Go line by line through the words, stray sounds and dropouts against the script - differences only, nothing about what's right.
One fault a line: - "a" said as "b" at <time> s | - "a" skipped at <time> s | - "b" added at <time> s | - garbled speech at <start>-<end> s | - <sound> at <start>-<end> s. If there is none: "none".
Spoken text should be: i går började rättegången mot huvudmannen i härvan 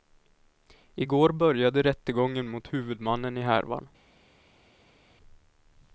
none